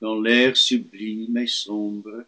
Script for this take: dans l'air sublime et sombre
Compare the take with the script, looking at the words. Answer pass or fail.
pass